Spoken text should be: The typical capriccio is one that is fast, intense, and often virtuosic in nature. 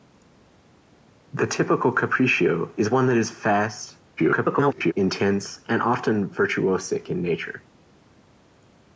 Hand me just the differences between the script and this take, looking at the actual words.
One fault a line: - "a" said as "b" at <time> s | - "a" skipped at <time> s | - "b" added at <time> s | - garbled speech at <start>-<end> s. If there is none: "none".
- garbled speech at 4.2-4.9 s